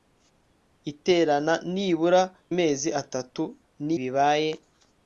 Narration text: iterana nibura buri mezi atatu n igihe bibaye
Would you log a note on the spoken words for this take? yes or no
yes